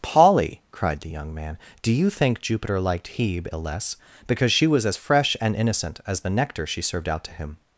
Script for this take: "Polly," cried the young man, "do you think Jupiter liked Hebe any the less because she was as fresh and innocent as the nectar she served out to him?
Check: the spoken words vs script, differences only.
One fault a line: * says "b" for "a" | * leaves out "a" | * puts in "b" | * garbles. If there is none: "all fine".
* leaves out "any"